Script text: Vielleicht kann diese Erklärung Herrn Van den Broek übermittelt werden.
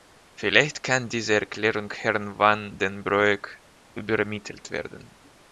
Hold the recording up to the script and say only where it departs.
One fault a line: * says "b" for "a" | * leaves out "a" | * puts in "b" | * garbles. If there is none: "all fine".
all fine